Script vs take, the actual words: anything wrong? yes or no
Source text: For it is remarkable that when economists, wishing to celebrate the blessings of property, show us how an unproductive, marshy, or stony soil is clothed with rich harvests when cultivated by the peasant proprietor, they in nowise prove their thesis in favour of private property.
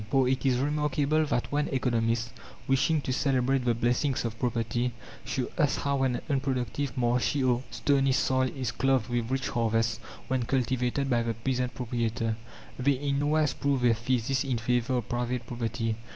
no